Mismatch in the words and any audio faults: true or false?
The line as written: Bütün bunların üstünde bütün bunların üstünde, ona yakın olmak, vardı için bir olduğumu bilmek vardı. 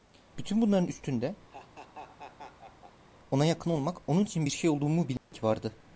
true